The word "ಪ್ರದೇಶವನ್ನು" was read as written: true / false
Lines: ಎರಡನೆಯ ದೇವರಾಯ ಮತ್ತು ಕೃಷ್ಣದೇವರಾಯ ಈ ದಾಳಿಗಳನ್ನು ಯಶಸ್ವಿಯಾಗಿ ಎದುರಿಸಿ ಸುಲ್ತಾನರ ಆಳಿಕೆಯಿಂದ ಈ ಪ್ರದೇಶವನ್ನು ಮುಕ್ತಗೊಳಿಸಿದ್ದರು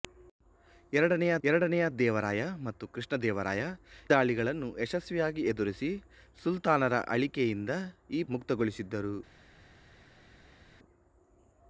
false